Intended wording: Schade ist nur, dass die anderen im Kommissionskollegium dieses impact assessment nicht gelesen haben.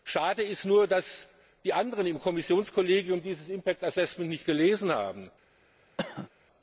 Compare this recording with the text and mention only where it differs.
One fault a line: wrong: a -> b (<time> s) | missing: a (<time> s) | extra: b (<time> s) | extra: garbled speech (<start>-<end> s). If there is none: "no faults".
no faults